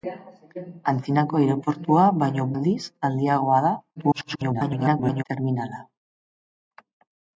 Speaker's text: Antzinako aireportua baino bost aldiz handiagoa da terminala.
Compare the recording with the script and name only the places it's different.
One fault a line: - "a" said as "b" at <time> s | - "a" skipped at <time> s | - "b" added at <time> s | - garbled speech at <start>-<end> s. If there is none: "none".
- "bost" skipped at 2.5 s
- garbled speech at 4.0-5.2 s